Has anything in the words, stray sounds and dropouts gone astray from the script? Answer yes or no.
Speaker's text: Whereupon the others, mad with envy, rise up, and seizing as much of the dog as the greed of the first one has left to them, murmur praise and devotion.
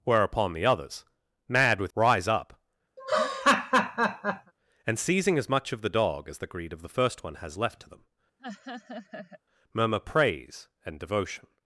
yes